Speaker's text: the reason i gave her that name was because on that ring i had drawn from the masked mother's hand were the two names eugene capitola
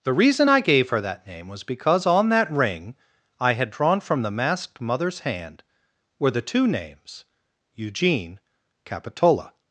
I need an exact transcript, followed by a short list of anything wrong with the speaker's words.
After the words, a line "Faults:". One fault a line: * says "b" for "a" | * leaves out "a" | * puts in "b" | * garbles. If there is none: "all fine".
the reason i gave her that name was because on that ring i had drawn from the masked mother's hand were the two names eugene capitola
Faults:
all fine